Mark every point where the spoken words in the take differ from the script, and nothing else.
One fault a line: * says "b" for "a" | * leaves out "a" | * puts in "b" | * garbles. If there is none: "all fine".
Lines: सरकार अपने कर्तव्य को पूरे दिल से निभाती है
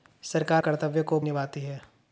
* leaves out "अपने"
* leaves out "पूरे दिल से"